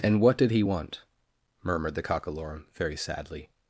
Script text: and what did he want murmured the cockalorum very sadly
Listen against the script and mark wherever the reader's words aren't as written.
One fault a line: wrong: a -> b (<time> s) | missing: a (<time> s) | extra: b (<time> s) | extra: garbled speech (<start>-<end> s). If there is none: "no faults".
no faults